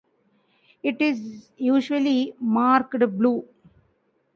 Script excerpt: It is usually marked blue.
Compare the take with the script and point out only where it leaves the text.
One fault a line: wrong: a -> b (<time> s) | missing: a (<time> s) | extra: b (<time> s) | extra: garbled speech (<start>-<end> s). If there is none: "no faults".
no faults